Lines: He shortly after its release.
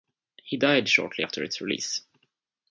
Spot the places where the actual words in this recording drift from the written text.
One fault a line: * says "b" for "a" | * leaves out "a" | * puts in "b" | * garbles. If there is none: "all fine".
* puts in "died"